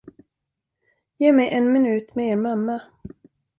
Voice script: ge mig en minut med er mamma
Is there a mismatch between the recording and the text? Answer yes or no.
no